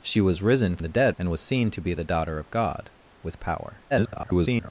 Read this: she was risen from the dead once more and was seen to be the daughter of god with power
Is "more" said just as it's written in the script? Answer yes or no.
no